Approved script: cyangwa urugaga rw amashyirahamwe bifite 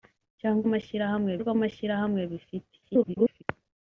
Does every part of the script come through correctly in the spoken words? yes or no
no